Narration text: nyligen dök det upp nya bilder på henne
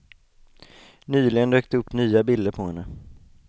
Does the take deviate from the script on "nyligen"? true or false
false